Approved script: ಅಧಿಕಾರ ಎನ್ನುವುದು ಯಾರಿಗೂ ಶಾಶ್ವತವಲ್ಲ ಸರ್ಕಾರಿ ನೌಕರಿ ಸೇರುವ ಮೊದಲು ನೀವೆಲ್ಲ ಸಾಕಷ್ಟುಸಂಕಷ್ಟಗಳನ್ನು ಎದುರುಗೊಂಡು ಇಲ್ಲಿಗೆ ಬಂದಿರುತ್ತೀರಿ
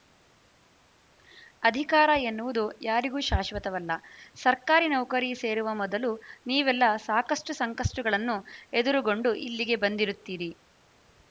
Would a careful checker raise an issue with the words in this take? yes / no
no